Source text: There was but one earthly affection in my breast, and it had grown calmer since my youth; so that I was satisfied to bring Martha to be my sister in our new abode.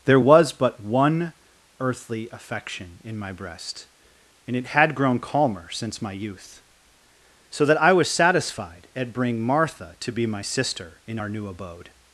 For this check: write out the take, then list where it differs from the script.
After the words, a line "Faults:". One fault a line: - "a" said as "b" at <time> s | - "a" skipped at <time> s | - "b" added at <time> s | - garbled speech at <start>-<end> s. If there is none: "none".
There was but one earthly affection in my breast, and it had grown calmer since my youth; so that I was satisfied at bring Martha to be my sister in our new abode.
Faults:
- "to" said as "at" at 9.0 s